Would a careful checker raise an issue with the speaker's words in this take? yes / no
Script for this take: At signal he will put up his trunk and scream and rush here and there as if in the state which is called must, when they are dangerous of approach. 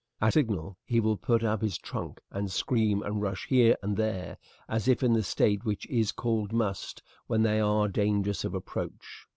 no